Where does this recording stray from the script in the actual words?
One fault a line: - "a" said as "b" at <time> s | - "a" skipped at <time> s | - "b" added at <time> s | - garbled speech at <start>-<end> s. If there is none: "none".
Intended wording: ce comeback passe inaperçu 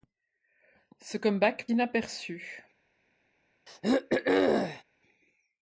- "passe" skipped at 1.7 s